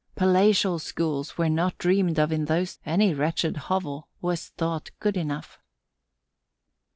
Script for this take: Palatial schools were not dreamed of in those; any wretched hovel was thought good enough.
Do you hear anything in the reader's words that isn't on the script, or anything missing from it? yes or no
no